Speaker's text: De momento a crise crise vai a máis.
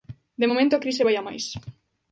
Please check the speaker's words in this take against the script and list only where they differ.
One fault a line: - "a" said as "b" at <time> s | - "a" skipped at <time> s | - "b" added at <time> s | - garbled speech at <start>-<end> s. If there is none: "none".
- "crise" skipped at 1.1 s